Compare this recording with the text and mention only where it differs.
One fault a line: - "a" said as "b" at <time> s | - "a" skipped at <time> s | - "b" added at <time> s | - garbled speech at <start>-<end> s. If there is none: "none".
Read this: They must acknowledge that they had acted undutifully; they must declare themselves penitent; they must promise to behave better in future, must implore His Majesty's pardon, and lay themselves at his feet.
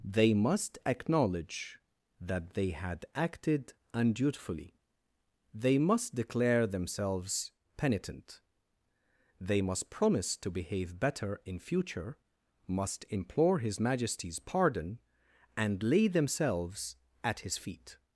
none